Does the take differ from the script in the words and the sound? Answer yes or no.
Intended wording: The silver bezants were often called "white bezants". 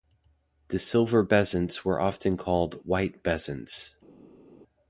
no